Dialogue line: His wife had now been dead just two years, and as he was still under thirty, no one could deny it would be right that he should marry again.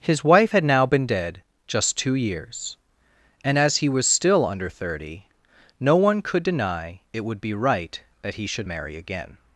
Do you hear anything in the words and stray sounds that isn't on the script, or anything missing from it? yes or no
no